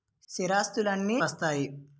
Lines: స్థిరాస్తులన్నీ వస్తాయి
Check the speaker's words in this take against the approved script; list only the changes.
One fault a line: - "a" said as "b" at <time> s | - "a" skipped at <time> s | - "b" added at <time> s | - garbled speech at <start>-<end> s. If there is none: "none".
none